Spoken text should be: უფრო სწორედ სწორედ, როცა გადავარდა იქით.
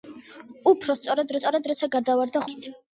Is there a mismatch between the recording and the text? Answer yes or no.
no